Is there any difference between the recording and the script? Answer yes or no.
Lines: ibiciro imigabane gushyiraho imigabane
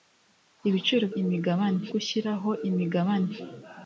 no